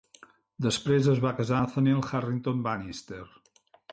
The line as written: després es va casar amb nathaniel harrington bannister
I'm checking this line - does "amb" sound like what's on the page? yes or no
no